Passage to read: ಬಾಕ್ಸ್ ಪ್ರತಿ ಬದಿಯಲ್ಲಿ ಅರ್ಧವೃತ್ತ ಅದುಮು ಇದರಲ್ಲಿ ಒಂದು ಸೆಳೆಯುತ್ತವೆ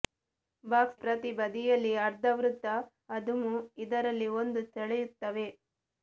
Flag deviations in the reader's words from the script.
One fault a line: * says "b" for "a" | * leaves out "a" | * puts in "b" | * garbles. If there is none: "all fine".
all fine